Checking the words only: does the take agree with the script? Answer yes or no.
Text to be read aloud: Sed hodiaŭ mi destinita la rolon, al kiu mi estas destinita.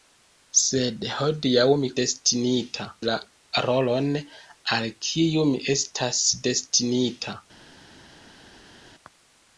yes